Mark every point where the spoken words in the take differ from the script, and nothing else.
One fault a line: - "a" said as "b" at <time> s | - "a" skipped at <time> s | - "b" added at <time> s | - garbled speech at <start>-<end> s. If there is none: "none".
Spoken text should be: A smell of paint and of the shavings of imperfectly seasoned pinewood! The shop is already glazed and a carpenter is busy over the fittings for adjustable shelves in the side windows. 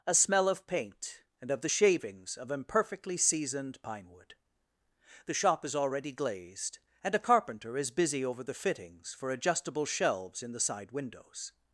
none